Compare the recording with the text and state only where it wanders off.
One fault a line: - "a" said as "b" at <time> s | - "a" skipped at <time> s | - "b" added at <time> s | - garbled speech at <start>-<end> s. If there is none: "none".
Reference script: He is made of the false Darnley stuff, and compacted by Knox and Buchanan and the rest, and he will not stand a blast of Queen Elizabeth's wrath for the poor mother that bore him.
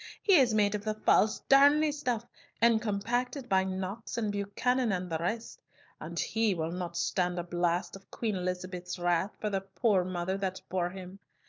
none